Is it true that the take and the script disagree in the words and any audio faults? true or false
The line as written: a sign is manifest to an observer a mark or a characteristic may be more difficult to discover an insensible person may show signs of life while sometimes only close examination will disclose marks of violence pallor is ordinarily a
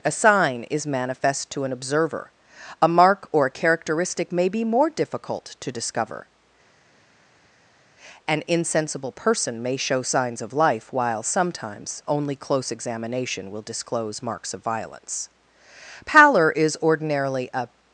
false